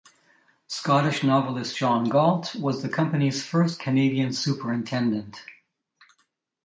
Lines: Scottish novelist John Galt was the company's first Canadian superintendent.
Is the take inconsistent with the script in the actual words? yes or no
no